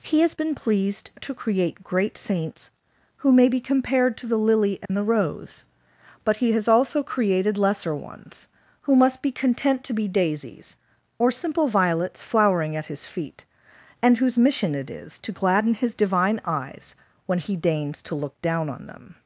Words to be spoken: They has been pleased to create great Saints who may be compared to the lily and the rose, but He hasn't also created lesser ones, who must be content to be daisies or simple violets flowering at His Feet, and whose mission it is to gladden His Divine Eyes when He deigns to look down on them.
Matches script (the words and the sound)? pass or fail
fail